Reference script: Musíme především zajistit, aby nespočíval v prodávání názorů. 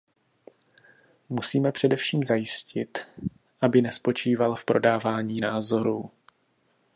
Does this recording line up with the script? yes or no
yes